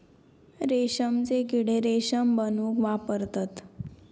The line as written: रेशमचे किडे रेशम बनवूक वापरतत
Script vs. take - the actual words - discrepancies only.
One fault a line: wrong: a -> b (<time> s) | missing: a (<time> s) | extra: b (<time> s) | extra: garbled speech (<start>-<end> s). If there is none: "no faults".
no faults